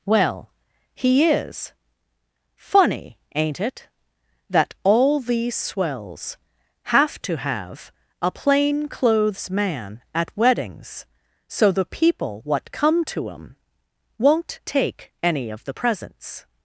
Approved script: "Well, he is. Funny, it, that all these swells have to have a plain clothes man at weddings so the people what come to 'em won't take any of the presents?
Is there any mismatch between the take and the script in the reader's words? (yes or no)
yes